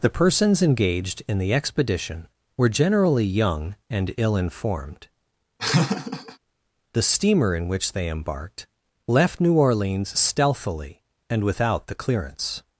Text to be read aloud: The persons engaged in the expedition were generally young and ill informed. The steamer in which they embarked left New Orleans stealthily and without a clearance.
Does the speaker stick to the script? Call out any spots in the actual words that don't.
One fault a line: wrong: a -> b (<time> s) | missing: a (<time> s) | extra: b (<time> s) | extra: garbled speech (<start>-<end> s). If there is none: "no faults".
wrong: a -> the (11.9 s)